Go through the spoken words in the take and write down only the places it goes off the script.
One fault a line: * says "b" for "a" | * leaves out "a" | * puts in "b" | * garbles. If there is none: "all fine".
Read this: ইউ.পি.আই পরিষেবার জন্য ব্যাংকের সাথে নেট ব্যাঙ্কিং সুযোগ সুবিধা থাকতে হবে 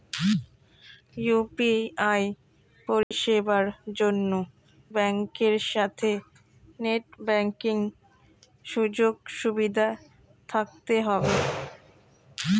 all fine